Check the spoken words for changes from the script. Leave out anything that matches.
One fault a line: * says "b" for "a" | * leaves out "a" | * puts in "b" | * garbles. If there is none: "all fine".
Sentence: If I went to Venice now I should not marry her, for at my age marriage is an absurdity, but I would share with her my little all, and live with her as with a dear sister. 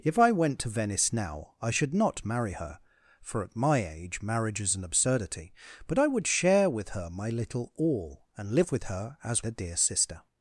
* leaves out "with"